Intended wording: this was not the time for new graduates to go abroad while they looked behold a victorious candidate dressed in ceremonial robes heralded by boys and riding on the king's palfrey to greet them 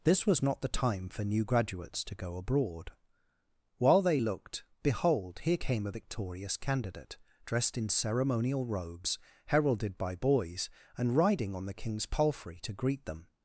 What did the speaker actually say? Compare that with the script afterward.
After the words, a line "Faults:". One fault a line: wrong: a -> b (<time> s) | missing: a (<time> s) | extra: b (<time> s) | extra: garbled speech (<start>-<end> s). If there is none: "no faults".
this was not the time for new graduates to go abroad while they looked behold here came a victorious candidate dressed in ceremonial robes heralded by boys and riding on the king's palfrey to greet them
Faults:
extra: here came (5.4 s)